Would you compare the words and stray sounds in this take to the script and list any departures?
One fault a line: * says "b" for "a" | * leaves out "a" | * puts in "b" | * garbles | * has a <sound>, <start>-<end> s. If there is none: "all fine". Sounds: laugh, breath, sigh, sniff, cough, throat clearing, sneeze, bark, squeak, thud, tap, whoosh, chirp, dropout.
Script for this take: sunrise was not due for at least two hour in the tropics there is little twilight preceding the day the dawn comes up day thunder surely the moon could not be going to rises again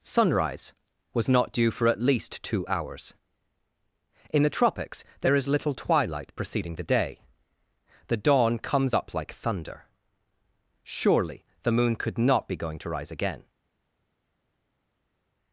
* says "hours" for "hour"
* says "like" for "day"
* says "rise" for "rises"